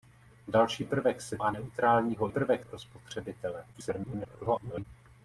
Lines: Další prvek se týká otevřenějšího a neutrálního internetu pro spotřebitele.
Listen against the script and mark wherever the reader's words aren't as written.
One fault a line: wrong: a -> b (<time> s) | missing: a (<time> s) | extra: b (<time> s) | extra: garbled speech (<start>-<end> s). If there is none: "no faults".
missing: týká otevřenějšího (1.4 s)
wrong: internetu -> prvek (2.3 s)
extra: garbled speech (3.7-4.8 s)